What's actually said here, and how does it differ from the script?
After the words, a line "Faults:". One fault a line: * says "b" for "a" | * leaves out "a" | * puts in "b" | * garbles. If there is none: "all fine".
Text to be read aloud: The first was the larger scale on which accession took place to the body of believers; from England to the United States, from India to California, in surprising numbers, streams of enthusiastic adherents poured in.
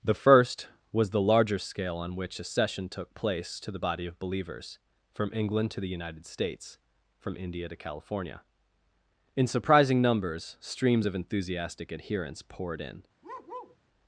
The first was the larger scale on which accession took place to the body of believers; from England to the United States, from India to California, in surprising numbers, streams of enthusiastic adherents poured in.
Faults:
all fine